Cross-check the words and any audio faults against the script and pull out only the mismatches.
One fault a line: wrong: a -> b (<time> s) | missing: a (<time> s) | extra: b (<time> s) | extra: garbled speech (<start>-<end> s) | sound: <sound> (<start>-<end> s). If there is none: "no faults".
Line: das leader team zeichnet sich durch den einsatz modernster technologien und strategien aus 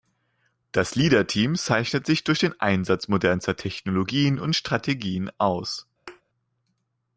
sound: thud (6.1-6.2 s)